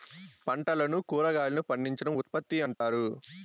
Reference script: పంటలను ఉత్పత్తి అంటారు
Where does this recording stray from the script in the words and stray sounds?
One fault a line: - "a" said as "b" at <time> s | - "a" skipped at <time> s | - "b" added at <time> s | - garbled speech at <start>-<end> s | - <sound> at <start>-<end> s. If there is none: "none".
- "కురాగాయలను పండించడం" added at 1.1 s
- dropout at 2.7-2.8 s